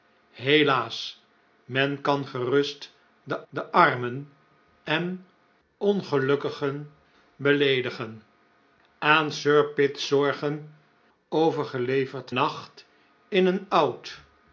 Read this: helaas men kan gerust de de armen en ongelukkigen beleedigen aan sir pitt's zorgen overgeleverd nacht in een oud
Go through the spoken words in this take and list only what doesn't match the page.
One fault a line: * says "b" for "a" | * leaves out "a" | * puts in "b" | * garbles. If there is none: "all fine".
all fine